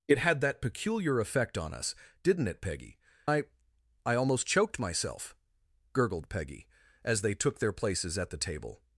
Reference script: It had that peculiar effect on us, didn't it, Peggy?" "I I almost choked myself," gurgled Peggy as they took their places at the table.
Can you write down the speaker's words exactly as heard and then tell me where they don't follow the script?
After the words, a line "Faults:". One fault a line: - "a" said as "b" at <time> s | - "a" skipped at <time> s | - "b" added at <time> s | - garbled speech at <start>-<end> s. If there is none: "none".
It had that peculiar effect on us, didn't it, Peggy?" "I I almost choked myself," gurgled Peggy as they took their places at the table.
Faults:
none